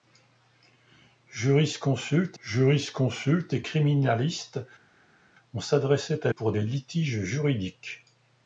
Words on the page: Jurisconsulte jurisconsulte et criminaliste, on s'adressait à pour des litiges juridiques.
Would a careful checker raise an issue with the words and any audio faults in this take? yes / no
no